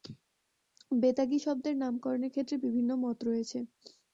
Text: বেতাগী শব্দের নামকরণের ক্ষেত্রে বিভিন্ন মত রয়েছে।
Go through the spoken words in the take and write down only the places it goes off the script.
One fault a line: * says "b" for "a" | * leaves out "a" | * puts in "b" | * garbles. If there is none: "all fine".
all fine